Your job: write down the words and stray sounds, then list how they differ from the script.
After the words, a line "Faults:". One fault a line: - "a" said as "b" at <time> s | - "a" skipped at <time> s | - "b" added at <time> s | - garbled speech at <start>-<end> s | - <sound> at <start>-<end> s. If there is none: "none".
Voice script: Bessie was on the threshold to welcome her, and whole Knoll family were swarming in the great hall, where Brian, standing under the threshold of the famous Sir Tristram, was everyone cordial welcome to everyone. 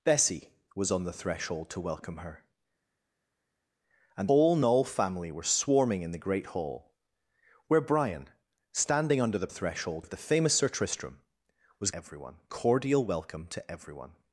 Bessie was on the threshold to welcome her, and whole Knoll family were swarming in the great hall, where Brian, standing under the threshold of the famous Sir Tristram, was everyone cordial welcome to everyone.
Faults:
none